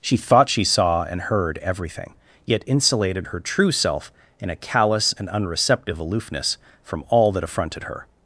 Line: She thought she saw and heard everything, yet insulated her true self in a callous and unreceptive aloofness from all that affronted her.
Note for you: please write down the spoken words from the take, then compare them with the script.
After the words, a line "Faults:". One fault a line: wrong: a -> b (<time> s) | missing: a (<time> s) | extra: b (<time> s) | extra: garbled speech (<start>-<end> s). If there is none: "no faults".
She thought she saw and heard everything, yet insulated her true self in a callous and unreceptive aloofness from all that affronted her.
Faults:
no faults